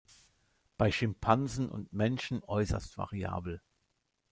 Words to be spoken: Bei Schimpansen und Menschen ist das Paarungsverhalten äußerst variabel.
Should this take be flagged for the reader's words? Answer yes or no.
yes